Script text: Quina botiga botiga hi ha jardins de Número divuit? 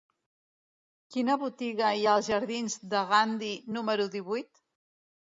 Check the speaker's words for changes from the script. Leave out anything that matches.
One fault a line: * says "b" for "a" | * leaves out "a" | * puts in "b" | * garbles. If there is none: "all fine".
* leaves out "botiga"
* puts in "als"
* puts in "Gandhi"